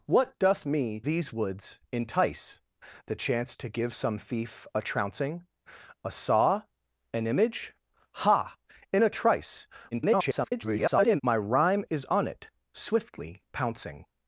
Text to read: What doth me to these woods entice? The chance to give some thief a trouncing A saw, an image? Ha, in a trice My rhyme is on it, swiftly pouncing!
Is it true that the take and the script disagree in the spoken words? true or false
true